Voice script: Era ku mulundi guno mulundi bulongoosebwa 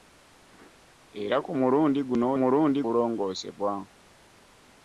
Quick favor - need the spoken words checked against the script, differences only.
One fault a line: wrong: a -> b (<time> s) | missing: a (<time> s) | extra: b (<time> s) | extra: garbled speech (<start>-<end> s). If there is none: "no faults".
no faults